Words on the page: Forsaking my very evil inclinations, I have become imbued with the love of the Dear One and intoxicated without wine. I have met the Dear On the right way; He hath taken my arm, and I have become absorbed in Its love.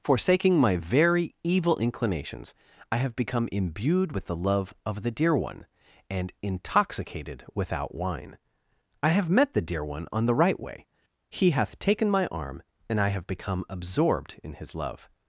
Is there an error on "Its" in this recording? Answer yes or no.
yes